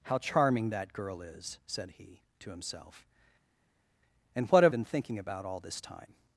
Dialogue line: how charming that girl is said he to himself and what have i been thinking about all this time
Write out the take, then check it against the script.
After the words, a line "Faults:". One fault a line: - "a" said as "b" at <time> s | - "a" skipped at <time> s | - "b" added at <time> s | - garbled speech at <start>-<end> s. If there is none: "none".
how charming that girl is said he to himself and what have been thinking about all this time
Faults:
- "i" skipped at 4.7 s